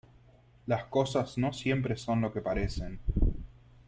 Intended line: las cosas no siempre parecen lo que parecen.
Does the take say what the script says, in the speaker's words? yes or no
no